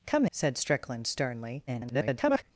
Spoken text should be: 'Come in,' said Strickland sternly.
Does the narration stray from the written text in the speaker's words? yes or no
yes